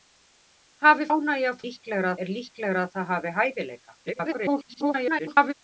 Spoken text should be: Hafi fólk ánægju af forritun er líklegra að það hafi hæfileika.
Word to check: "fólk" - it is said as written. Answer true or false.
false